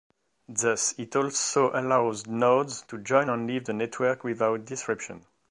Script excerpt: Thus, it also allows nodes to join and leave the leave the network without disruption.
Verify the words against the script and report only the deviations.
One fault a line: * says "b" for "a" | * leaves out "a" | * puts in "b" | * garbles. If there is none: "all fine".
* leaves out "leave the"